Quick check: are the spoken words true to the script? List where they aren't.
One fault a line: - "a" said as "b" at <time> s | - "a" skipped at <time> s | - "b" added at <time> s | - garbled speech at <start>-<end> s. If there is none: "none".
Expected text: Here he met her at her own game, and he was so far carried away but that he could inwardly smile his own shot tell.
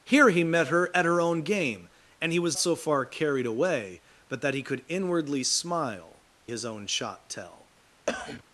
none